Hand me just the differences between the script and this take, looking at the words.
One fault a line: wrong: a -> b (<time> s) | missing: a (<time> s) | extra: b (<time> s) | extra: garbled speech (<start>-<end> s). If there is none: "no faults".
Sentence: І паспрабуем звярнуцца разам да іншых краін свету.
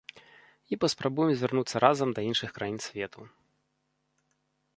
no faults